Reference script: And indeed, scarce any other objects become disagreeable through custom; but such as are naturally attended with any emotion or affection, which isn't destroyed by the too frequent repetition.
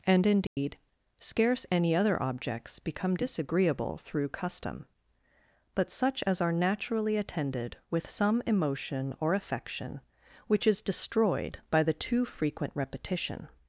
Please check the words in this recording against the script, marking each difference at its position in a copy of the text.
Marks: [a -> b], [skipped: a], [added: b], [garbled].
And indeed, scarce any other objects become disagreeable through custom; but such as are naturally attended with [any -> some] emotion or affection, which [isn't -> is] destroyed by the too frequent repetition.